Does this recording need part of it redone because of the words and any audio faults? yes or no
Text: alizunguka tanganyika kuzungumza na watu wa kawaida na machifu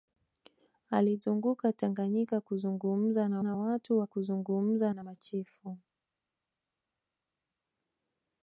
yes